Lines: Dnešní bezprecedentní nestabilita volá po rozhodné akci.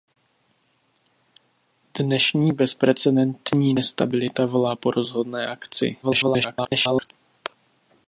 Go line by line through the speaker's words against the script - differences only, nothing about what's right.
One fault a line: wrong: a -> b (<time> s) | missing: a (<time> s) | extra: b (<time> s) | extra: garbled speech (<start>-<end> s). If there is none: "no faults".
extra: garbled speech (6.0-7.1 s)